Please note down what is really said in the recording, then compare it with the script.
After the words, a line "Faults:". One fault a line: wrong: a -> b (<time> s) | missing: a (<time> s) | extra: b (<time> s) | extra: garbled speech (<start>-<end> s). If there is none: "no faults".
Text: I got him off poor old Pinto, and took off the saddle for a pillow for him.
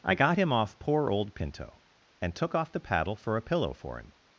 I got him off poor old Pinto, and took off the paddle for a pillow for him.
Faults:
wrong: saddle -> paddle (2.8 s)